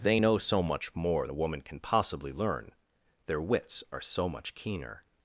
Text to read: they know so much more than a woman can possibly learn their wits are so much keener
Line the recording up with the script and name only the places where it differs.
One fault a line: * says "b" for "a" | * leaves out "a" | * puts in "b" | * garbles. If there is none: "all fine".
* leaves out "than"